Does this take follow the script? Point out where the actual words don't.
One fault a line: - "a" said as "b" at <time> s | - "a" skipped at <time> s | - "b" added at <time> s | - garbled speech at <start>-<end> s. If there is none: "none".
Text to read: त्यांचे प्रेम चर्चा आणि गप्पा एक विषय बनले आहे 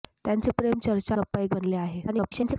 - "आणि" skipped at 1.1 s
- "विषय" skipped at 1.5 s
- garbled speech at 2.1-2.6 s